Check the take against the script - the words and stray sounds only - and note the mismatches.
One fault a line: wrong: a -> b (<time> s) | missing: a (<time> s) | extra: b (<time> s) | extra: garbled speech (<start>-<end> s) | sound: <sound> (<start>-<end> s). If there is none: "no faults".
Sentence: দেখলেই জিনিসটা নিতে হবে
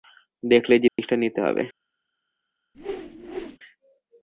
sound: dropout (0.9-1.0 s)
sound: whoosh (2.7-3.6 s)